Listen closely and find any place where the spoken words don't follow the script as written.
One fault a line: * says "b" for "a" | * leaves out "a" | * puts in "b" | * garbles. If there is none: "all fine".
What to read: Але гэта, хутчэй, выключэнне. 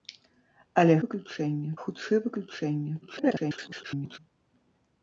* says "выключэнне" for "гэта"
* garbles